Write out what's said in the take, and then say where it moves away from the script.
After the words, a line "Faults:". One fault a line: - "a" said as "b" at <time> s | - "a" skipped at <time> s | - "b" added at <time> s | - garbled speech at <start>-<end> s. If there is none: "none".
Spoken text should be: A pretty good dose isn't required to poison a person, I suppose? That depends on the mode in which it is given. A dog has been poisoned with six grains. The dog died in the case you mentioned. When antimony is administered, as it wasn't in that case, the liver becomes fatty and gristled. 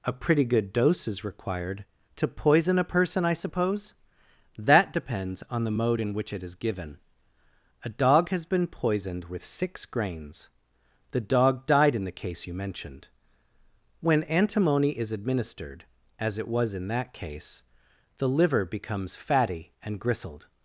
A pretty good dose is required to poison a person, I suppose? That depends on the mode in which it is given. A dog has been poisoned with six grains. The dog died in the case you mentioned. When antimony is administered, as it was in that case, the liver becomes fatty and gristled.
Faults:
- "isn't" said as "is" at 1.1 s
- "wasn't" said as "was" at 16.5 s